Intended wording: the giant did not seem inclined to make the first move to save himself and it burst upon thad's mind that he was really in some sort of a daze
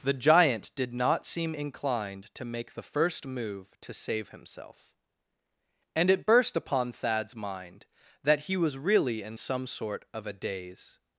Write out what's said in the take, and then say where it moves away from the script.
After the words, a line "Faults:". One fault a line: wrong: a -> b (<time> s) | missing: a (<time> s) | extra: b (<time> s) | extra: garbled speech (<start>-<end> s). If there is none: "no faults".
the giant did not seem inclined to make the first move to save himself and it burst upon thad's mind that he was really in some sort of a daze
Faults:
no faults